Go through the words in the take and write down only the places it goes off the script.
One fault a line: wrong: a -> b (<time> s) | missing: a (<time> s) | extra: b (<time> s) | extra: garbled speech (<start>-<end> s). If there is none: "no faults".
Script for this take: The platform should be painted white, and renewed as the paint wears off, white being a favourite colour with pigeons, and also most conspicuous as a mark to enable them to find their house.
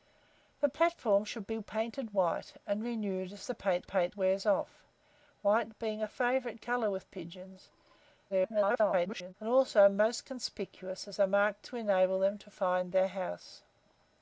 extra: paint (3.8 s)
extra: garbled speech (8.3-9.3 s)